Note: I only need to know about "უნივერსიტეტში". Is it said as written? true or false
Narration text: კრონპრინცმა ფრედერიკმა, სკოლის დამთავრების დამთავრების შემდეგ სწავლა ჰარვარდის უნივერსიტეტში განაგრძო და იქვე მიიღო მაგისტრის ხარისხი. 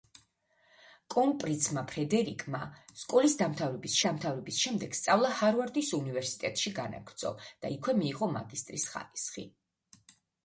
true